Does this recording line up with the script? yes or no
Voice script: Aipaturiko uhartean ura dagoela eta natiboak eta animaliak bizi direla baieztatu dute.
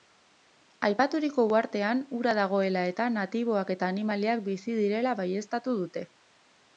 yes